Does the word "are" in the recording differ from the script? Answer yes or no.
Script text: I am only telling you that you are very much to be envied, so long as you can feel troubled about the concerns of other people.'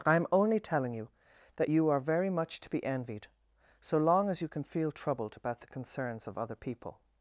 no